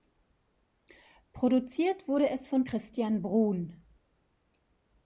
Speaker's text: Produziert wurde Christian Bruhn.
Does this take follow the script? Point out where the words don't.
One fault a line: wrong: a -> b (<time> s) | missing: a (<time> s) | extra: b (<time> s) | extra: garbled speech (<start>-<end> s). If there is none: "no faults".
extra: es von (2.3 s)